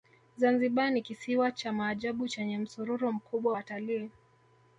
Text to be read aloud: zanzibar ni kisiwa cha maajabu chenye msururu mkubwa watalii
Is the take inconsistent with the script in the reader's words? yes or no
no